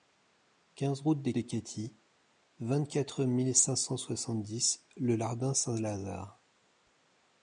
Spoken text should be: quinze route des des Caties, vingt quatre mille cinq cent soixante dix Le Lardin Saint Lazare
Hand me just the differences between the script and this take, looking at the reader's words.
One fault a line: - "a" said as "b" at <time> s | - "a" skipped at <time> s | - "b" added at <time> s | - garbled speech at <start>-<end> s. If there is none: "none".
none